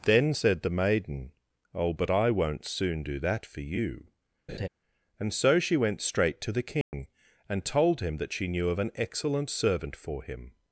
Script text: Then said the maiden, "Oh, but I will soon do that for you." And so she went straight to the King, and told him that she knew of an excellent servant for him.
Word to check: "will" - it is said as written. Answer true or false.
false